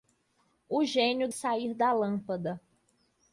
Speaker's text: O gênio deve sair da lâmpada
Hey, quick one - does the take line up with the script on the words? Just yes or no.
no